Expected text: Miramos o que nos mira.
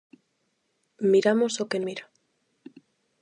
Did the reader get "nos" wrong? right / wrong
wrong